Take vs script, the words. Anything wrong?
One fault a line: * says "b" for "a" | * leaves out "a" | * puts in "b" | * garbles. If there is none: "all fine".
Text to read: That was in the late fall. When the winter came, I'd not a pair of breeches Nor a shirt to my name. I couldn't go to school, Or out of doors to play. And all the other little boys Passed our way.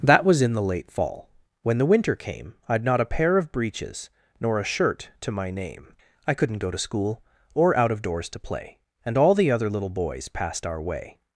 all fine